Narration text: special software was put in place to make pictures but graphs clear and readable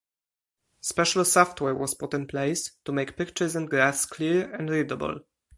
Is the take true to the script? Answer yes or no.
no